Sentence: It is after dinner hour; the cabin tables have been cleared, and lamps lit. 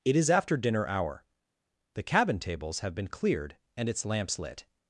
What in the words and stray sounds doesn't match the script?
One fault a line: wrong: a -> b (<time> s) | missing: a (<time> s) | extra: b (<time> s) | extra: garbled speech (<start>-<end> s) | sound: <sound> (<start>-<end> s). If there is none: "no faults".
extra: its (3.9 s)